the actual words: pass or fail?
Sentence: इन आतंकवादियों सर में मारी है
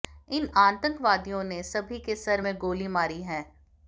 fail